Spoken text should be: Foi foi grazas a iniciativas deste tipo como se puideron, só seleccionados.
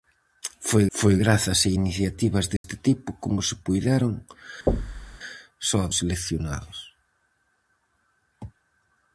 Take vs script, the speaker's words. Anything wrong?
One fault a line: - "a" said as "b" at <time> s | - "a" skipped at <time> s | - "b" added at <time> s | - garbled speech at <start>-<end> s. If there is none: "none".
none